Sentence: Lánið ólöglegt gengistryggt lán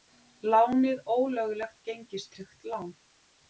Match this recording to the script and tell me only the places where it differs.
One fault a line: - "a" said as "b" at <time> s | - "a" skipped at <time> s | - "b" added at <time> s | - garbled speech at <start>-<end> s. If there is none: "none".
none